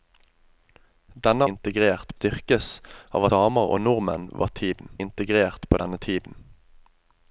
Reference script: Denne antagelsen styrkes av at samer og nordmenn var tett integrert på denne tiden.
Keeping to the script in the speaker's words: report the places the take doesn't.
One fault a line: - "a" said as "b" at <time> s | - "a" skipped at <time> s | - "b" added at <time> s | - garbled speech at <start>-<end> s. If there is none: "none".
- "antagelsen" said as "integrert" at 1.5 s
- "at" skipped at 3.2 s
- "tett" said as "tiden" at 4.6 s